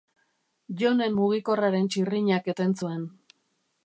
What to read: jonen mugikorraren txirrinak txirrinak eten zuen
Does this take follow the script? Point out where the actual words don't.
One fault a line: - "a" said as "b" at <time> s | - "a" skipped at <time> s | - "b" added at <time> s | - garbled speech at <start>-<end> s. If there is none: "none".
- "txirrinak" skipped at 2.5 s